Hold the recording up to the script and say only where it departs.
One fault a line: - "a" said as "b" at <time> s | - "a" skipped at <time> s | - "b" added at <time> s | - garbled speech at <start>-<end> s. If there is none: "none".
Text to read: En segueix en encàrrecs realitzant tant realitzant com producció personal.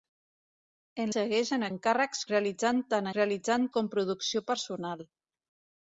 none